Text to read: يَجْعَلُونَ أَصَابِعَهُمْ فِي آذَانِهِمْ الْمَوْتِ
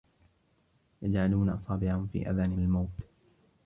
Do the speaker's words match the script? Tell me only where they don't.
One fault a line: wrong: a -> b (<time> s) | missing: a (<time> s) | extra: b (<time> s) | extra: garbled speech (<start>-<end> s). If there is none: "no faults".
no faults